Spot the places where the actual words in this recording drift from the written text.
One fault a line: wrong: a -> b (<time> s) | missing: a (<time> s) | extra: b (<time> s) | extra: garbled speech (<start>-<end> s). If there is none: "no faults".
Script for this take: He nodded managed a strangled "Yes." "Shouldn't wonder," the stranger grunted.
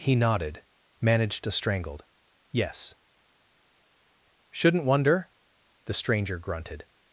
no faults